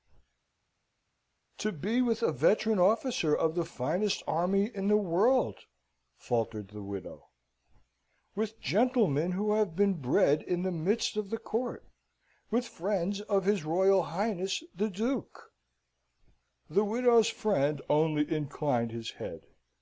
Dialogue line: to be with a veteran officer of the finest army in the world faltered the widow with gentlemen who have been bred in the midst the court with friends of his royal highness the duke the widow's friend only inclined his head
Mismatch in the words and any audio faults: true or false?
true